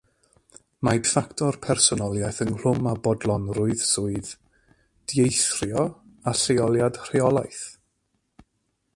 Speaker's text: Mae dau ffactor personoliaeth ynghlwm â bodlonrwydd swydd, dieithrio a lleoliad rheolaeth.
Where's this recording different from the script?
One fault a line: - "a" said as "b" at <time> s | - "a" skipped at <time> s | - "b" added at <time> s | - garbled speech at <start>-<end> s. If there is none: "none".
- "dau" skipped at 1.0 s